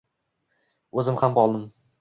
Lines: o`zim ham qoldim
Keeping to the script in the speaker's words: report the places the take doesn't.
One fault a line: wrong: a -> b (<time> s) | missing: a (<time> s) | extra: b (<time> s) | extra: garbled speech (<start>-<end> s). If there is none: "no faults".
no faults